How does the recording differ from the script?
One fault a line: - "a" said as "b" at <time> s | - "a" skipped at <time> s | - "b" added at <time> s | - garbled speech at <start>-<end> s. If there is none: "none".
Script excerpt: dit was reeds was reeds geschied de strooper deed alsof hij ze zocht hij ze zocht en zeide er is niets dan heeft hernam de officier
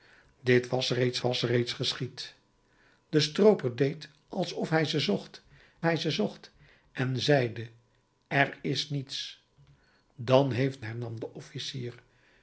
none